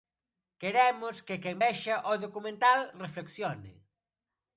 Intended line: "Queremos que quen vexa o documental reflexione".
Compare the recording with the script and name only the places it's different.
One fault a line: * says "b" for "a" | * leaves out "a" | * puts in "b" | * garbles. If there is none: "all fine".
all fine